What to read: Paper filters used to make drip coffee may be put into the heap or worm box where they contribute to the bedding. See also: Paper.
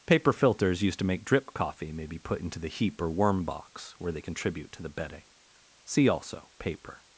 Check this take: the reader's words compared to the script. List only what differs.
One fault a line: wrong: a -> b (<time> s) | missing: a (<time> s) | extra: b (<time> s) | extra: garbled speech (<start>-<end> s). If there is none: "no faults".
no faults